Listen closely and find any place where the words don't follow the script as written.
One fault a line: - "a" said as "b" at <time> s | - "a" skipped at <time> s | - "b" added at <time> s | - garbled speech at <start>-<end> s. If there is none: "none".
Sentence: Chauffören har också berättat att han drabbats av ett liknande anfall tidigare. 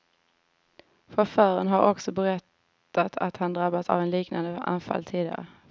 none